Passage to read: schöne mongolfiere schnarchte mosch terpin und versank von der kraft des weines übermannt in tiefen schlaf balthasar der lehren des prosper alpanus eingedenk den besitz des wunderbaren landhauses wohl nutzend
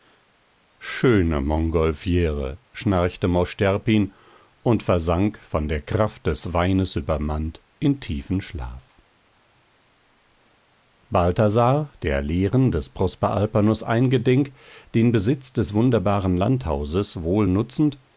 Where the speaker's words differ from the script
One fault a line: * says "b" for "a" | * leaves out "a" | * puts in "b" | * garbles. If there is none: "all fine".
all fine